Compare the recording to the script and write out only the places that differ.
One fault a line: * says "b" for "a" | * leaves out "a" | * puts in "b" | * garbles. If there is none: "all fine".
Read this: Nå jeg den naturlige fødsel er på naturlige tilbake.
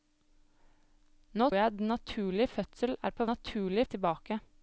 all fine